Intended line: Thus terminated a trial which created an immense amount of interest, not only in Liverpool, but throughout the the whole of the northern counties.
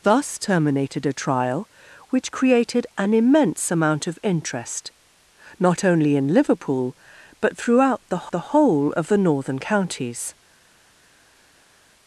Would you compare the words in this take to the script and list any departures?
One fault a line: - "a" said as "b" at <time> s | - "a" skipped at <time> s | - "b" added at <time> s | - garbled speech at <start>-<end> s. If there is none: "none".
none